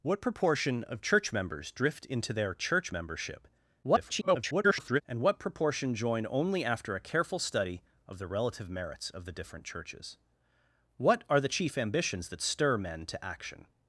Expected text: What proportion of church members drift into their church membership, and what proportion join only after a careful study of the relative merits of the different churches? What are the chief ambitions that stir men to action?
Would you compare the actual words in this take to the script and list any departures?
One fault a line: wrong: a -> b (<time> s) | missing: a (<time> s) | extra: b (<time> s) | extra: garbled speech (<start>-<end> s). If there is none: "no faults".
extra: garbled speech (3.8-5.0 s)